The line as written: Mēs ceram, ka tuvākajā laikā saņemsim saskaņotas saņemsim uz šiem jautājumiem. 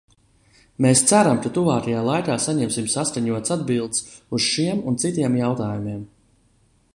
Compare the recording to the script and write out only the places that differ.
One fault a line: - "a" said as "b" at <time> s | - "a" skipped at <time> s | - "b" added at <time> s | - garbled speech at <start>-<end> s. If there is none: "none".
- "saņemsim" said as "atbildes" at 3.6 s
- "un citiem" added at 4.9 s